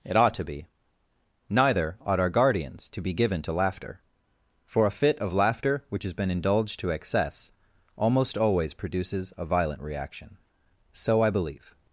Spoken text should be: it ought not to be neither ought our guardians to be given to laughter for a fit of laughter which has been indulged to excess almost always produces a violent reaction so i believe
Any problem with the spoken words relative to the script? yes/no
yes